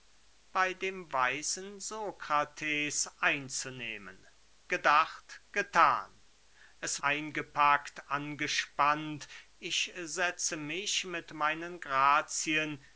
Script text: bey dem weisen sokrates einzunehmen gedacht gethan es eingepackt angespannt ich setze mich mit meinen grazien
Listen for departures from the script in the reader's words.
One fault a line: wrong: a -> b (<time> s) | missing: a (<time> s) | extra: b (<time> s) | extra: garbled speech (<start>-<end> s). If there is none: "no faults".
no faults